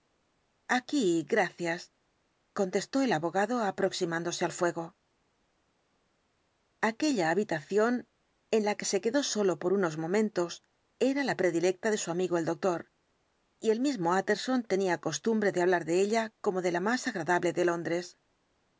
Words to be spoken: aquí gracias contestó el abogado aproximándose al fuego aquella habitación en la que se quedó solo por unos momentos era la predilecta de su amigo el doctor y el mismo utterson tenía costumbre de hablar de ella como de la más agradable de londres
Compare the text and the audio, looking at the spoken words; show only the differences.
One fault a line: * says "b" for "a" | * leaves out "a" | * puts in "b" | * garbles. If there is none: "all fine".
all fine